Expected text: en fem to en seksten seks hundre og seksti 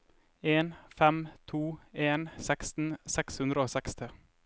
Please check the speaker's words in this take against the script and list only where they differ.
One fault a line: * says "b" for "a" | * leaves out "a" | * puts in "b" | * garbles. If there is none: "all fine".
all fine